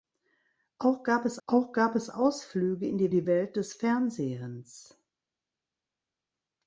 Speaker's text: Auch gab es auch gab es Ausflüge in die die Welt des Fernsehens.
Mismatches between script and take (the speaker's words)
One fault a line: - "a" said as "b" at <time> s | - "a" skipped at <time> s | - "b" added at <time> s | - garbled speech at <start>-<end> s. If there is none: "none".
none